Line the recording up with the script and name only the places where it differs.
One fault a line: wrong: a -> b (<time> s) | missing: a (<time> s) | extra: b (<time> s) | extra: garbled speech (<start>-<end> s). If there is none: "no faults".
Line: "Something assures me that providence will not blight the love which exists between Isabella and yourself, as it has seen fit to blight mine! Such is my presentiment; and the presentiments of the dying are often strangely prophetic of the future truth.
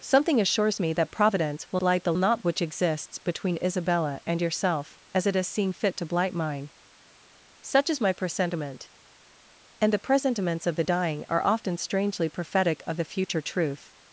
missing: not (1.8 s)
wrong: love -> not (2.1 s)